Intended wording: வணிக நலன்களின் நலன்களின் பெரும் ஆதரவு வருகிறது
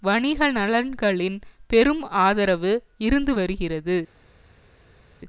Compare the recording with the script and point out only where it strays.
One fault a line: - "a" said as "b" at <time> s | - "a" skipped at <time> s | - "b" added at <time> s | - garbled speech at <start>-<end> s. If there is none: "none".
- "நலன்களின்" skipped at 1.4 s
- "இருந்து" added at 3.0 s